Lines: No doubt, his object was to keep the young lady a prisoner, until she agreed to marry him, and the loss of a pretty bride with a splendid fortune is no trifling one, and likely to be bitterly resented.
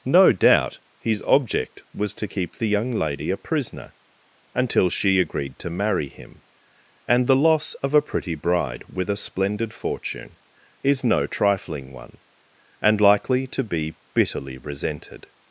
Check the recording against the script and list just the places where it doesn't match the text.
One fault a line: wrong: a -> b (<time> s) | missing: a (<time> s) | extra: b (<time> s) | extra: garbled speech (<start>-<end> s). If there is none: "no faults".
no faults